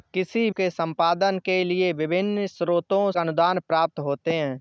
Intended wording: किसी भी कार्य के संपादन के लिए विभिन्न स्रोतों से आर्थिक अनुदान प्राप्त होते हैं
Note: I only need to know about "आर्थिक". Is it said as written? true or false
false